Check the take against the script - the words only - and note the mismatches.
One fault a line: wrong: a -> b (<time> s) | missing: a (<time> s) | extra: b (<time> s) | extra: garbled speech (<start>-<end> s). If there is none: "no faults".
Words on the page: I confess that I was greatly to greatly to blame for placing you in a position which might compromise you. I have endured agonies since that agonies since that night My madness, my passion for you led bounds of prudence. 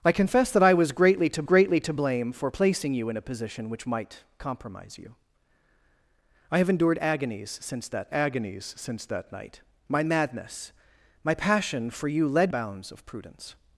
no faults